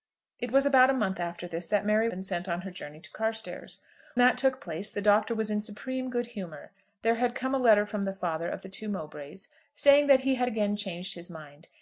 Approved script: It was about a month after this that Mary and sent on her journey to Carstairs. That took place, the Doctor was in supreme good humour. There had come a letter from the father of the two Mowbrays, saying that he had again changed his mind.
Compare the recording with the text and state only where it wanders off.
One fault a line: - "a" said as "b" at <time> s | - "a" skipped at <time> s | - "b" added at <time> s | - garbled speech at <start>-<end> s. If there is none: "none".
none